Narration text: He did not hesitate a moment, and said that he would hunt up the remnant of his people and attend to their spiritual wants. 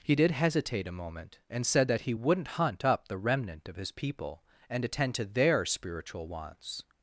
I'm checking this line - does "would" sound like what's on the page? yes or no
no